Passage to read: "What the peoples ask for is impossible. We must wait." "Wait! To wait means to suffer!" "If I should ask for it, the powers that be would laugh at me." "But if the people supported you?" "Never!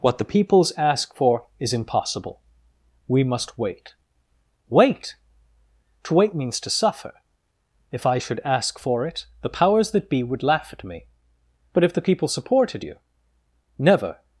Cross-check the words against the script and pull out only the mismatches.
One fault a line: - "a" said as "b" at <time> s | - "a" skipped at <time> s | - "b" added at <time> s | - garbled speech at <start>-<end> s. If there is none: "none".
none